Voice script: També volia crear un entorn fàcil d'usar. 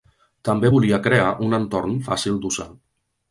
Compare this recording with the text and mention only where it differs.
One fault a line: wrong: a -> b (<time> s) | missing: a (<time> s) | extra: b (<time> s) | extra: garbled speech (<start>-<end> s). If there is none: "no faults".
no faults